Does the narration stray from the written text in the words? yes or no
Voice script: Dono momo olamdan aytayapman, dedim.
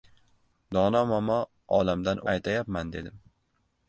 no